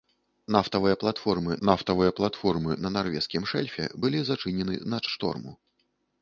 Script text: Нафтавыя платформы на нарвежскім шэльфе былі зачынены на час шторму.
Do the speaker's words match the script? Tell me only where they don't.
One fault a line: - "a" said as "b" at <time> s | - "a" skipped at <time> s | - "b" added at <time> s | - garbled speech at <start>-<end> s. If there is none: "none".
- "нафтавыя платформы" added at 1.7 s
- "час" skipped at 5.0 s